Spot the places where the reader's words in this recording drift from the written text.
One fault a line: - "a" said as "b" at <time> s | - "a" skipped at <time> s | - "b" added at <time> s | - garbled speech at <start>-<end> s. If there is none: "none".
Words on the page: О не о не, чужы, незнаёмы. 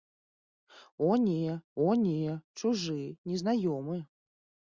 none